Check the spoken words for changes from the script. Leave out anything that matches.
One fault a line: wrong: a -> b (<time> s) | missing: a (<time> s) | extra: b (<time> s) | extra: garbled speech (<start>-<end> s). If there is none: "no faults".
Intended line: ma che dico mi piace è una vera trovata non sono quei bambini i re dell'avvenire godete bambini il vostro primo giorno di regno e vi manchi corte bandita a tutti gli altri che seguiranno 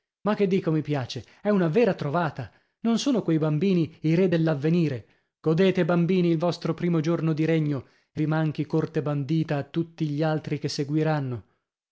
no faults